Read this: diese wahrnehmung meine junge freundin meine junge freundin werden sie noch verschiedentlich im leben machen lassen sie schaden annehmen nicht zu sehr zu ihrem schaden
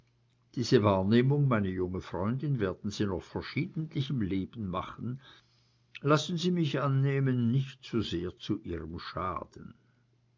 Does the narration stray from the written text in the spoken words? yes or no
yes